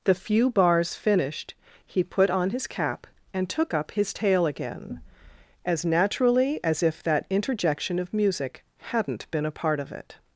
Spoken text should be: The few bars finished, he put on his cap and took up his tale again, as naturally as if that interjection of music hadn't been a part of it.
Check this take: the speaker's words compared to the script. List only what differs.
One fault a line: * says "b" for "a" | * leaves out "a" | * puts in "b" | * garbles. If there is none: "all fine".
all fine